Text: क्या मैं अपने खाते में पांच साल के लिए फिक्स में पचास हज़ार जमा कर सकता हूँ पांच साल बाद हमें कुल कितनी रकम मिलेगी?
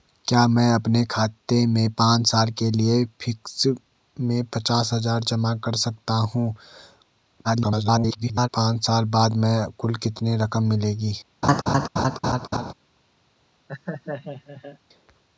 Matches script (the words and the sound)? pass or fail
fail